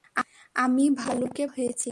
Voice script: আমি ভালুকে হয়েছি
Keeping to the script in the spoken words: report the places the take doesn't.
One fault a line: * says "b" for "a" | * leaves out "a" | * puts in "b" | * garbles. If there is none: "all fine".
all fine